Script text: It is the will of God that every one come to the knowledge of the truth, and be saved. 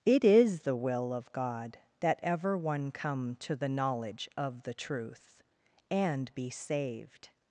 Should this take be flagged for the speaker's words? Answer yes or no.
yes